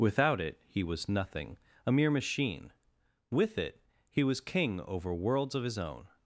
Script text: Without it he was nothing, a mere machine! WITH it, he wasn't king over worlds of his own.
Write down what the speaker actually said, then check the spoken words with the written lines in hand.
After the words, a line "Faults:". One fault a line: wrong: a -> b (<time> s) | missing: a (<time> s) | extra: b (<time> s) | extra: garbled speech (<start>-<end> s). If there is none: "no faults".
Without it he was nothing, a mere machine! WITH it, he was king over worlds of his own.
Faults:
wrong: wasn't -> was (4.2 s)